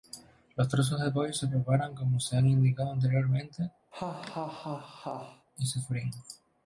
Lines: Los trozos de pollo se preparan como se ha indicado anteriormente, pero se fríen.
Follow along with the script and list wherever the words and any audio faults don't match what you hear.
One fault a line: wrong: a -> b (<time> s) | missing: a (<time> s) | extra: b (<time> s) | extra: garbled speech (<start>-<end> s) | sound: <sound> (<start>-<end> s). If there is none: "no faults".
sound: laugh (3.9-5.5 s)
wrong: pero -> y (5.6 s)